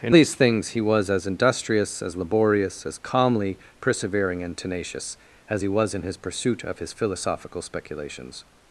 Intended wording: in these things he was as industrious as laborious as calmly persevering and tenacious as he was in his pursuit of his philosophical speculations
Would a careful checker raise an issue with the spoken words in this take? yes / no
no